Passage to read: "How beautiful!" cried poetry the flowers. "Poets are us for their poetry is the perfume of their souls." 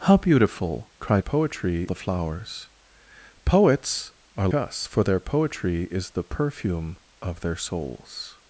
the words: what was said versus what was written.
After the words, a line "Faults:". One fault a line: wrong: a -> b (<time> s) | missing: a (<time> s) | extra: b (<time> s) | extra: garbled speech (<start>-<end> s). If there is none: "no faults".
"How beautiful!" cried poetry the flowers. "Poets are us for their poetry is the perfume of their souls."
Faults:
no faults